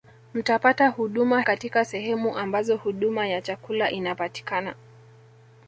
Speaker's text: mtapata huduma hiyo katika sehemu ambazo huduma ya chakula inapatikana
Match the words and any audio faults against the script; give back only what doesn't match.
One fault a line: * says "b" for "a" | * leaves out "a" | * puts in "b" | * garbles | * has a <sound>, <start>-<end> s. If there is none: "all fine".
* leaves out "hiyo"